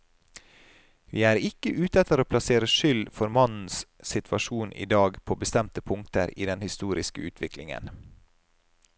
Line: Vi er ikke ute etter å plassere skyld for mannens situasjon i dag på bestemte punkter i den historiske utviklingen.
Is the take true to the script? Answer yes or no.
yes